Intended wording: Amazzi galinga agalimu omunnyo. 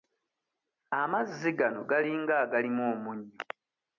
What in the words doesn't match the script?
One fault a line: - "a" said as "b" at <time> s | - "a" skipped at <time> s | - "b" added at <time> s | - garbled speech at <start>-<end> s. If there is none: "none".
- "gano" added at 1.6 s